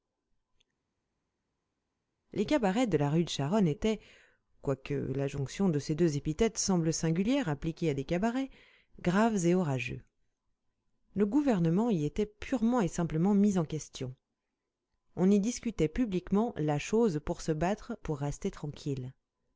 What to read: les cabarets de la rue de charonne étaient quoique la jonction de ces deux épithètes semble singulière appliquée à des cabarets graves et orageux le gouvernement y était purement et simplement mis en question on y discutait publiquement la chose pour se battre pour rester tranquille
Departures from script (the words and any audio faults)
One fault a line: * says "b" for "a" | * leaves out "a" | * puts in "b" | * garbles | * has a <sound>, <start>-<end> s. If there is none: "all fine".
all fine